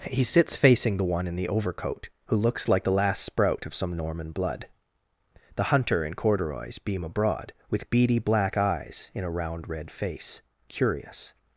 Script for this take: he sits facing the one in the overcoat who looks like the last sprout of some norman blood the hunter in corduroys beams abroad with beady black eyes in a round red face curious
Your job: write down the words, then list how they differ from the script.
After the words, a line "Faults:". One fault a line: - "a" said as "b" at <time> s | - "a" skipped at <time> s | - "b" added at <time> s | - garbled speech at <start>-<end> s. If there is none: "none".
he sits facing the one in the overcoat who looks like the last sprout of some norman blood the hunter in corduroys beam abroad with beady black eyes in a round red face curious
Faults:
- "beams" said as "beam" at 6.8 s